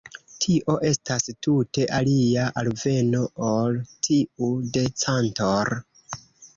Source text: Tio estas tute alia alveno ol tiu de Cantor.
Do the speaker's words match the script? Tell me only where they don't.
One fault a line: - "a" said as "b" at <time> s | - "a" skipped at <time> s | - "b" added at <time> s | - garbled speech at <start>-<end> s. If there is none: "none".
none